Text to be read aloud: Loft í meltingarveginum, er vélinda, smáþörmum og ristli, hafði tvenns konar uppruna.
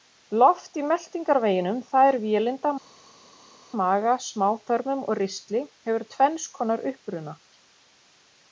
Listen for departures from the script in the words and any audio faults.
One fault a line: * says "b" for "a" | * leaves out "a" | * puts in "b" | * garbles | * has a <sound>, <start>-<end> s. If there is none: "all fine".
* puts in "það"
* puts in "maga"
* says "hefur" for "hafði"